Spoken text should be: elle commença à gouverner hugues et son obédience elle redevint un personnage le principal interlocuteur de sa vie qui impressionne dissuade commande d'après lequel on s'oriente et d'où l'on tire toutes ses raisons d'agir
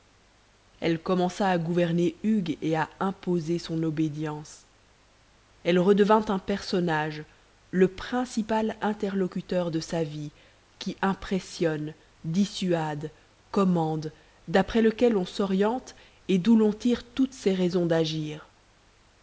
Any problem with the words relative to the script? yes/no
yes